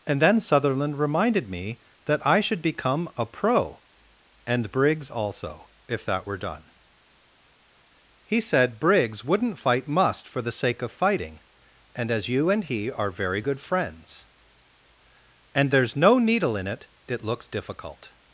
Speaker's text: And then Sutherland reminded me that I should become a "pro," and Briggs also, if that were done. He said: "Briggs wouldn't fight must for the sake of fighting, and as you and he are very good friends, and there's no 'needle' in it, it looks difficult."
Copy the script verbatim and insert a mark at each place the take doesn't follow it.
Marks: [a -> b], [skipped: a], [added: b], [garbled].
And then Sutherland reminded me that I should become a "pro," and Briggs also, if that were done. He said: "Briggs wouldn't fight must for the sake of fighting, and as you and he are very good friends, and there's no 'needle' in it, it looks difficult."